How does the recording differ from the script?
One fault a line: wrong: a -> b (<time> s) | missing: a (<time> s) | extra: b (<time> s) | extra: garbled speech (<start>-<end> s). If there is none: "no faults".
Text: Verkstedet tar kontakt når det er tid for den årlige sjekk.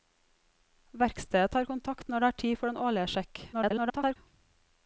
extra: garbled speech (3.5-4.2 s)